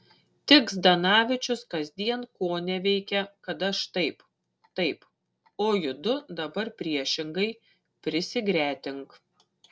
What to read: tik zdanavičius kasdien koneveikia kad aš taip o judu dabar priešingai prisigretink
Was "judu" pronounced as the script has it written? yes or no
yes